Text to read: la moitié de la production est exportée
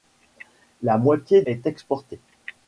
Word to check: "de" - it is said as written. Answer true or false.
false